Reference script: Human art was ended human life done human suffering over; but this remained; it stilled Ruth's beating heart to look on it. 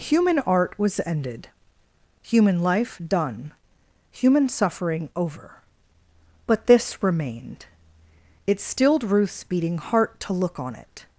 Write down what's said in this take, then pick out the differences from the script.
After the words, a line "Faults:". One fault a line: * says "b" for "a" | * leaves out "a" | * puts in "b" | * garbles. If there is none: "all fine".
Human art was ended human life done human suffering over; but this remained; it stilled Ruth's beating heart to look on it.
Faults:
all fine